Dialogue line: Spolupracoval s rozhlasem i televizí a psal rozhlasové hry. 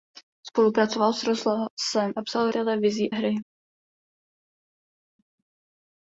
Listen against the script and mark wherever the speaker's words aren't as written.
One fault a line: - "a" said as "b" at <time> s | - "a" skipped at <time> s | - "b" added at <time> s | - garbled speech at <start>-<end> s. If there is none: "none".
- "i televizí" skipped at 2.1 s
- "rozhlasové" said as "televizí" at 2.5 s